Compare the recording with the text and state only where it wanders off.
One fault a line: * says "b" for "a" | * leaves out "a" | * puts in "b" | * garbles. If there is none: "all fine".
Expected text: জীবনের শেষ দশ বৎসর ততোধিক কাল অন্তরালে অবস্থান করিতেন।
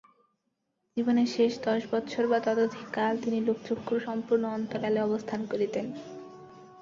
* puts in "বা"
* puts in "তিনি লোকচক্ষুর সম্পূর্ণ"